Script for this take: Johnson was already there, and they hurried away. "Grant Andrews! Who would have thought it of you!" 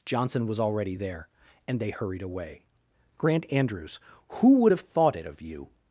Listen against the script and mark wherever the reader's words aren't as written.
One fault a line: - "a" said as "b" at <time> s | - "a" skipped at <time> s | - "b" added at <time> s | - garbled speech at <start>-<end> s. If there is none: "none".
none